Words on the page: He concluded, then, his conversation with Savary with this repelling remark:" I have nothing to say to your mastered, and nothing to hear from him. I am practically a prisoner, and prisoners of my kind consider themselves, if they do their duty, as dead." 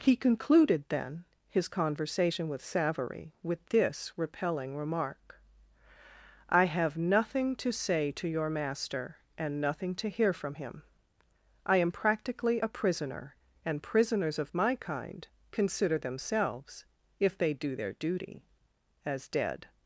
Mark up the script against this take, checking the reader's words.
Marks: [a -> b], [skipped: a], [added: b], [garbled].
He concluded, then, his conversation with Savary with this repelling remark:" I have nothing to say to your [mastered, -> master] and nothing to hear from him. I am practically a prisoner, and prisoners of my kind consider themselves, if they do their duty, as dead."